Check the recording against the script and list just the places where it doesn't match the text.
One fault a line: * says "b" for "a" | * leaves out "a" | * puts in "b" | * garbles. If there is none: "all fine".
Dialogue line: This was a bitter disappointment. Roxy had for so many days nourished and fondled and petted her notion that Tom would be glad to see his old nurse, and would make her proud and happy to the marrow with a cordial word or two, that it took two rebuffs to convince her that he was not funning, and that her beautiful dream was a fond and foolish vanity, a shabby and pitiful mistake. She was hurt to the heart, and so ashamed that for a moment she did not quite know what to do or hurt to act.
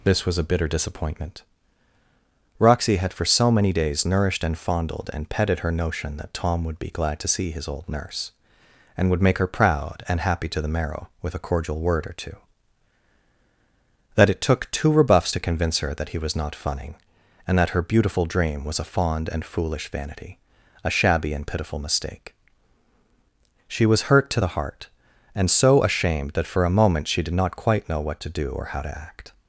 * says "how" for "hurt"